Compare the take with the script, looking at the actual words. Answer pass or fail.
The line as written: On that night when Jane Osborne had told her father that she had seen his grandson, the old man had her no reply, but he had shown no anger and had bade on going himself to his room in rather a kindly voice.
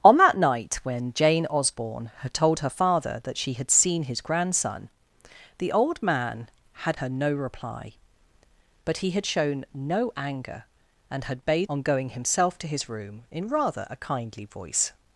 pass